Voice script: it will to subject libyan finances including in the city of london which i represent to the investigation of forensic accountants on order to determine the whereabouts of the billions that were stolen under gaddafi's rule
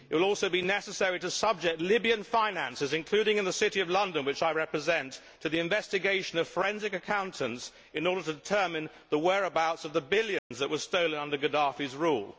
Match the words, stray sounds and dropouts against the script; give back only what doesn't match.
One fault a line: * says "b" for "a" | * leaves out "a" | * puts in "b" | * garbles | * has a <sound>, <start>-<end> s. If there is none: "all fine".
* puts in "also be necessary"
* says "in" for "on"
* has a dropout, 10.4-10.5 s